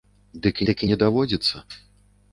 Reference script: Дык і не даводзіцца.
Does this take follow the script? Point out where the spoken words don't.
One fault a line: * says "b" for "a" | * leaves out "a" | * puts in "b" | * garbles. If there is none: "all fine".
* puts in "дык"